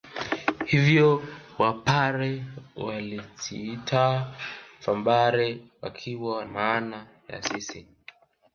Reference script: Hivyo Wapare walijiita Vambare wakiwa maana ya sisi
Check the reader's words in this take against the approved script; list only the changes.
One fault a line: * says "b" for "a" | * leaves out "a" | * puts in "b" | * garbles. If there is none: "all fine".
all fine